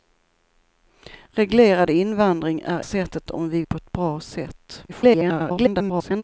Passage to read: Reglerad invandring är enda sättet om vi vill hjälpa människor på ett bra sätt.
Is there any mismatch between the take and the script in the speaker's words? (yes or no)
yes